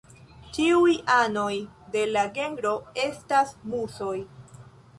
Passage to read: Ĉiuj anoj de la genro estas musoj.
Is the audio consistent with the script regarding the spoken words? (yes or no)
yes